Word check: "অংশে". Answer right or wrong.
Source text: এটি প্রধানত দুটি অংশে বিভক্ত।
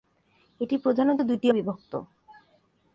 wrong